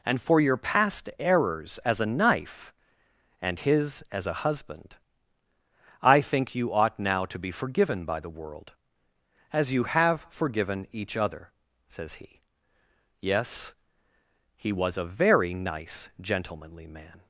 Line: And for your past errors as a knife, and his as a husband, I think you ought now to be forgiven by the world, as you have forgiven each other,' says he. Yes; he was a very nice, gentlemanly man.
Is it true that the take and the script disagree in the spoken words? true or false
false